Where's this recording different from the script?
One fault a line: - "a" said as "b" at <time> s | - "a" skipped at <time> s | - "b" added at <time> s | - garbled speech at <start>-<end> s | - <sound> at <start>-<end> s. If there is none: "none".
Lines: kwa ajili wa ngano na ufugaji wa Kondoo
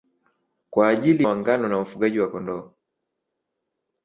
none